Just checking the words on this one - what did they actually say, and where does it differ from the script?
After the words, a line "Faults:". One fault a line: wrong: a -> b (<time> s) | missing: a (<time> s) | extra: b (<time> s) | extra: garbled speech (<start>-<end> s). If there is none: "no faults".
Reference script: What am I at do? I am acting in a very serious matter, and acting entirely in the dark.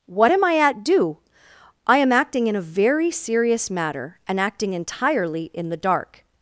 What am I at do? I am acting in a very serious matter, and acting entirely in the dark.
Faults:
no faults